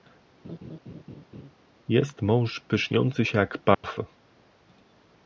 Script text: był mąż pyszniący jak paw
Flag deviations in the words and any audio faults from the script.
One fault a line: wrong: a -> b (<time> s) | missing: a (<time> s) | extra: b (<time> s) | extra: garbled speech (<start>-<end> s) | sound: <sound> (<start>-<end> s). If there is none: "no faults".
sound: laugh (0.4-1.5 s)
wrong: był -> jest (1.9 s)
extra: się (3.2 s)
sound: dropout (3.7-3.8 s)